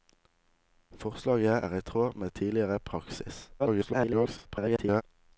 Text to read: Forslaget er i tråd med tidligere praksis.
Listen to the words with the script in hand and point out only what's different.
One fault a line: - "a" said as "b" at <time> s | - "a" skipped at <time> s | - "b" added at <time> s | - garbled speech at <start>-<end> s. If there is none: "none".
- garbled speech at 3.6-5.0 s